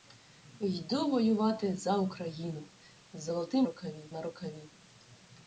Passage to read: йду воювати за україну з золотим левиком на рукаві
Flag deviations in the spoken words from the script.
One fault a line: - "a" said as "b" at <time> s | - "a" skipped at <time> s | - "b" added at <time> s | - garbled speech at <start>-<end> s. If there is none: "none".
- "левиком" said as "рукаві" at 3.6 s